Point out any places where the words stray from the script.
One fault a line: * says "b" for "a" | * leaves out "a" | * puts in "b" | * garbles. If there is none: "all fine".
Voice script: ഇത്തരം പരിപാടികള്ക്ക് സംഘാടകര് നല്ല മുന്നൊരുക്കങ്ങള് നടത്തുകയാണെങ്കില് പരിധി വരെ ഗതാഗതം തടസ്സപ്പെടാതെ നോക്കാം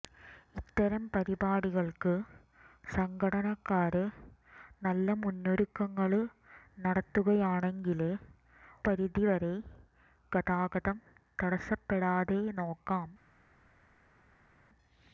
all fine